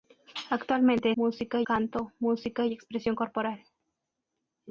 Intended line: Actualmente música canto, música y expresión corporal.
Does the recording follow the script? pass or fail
pass